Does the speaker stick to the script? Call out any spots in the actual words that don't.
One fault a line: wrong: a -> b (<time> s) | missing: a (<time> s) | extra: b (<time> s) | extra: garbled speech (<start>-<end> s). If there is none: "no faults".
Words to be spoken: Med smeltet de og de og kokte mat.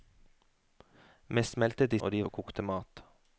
no faults